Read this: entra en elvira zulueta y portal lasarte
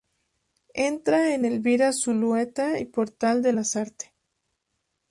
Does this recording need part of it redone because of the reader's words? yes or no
yes